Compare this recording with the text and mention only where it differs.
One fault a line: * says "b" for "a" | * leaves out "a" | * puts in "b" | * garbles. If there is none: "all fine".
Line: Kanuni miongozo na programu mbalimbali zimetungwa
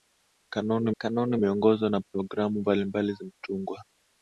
* puts in "kanuni"